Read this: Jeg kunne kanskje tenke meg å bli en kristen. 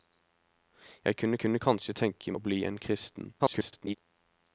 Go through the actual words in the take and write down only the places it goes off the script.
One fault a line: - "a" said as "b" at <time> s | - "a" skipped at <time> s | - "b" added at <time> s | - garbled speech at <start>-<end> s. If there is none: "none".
- "kunne" added at 1.4 s
- "meg" skipped at 2.3 s
- garbled speech at 3.4-3.9 s